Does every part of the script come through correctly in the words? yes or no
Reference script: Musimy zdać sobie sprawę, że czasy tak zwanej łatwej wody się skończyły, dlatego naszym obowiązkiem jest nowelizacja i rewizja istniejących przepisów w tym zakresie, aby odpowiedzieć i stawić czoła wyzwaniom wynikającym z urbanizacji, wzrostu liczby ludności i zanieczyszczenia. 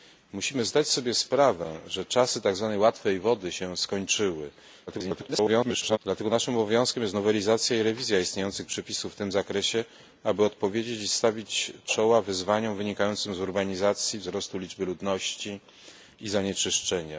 no